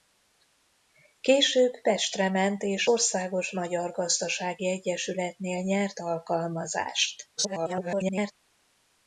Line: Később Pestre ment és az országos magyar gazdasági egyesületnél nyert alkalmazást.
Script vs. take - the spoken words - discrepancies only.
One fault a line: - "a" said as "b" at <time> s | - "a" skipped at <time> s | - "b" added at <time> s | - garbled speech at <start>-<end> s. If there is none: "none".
- "az" skipped at 2.9 s
- garbled speech at 7.4-8.3 s